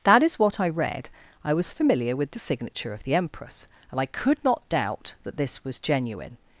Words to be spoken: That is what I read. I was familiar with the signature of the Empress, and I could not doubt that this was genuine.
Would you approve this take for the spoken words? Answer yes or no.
yes